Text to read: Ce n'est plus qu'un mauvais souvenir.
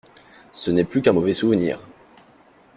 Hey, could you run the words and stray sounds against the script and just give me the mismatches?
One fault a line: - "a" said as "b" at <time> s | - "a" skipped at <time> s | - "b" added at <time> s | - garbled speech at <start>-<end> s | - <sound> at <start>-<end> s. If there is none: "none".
none